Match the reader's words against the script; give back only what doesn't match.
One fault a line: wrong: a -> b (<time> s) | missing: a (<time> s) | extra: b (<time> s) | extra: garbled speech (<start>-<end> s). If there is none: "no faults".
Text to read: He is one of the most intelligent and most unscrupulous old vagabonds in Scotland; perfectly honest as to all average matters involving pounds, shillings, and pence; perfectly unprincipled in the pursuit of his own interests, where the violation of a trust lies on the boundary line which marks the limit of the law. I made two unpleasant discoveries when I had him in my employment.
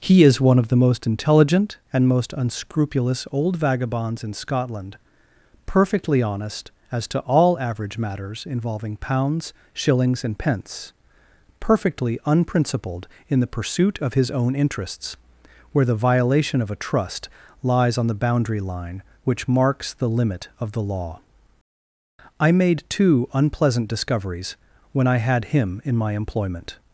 no faults